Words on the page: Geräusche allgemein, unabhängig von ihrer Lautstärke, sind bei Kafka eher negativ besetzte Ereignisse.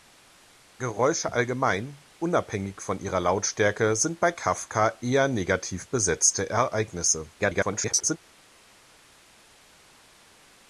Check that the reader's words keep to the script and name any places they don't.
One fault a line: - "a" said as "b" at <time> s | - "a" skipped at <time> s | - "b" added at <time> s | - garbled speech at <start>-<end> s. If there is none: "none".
- garbled speech at 7.4-8.2 s